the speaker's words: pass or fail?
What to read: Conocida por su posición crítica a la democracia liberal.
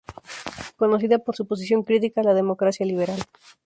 pass